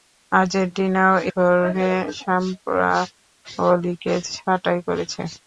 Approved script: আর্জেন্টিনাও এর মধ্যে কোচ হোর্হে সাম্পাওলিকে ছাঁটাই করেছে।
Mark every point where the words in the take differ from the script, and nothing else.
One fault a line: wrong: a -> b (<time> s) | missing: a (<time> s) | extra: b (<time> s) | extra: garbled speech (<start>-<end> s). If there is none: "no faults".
missing: এর মধ্যে কোচ (1.1 s)